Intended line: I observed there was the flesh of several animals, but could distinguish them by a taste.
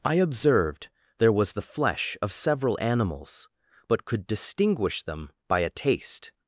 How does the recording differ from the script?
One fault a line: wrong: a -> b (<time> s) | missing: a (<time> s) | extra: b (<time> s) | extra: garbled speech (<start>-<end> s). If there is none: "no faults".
no faults